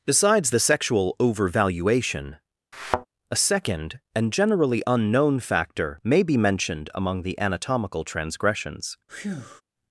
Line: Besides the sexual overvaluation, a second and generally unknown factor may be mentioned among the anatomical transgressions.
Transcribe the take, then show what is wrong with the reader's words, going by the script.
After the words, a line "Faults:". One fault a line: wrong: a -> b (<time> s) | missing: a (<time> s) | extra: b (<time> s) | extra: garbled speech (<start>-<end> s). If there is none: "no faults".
Besides the sexual overvaluation, a second and generally unknown factor may be mentioned among the anatomical transgressions.
Faults:
no faults